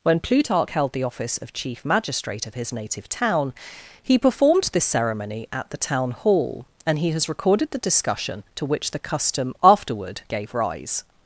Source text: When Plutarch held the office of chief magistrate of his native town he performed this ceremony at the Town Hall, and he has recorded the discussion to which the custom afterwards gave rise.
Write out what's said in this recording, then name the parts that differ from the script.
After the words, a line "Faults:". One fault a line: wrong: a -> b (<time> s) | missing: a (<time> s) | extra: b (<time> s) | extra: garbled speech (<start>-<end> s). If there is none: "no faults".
When Plutarch held the office of chief magistrate of his native town he performed this ceremony at the Town Hall, and he has recorded the discussion to which the custom afterward gave rise.
Faults:
wrong: afterwards -> afterward (9.6 s)